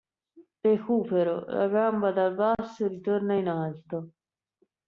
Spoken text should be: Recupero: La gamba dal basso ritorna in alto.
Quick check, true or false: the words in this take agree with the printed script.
true